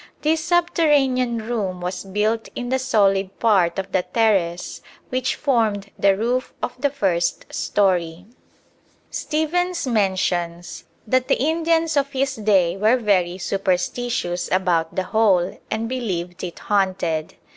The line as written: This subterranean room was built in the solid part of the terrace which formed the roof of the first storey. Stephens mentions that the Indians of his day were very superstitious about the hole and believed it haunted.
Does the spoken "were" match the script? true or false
true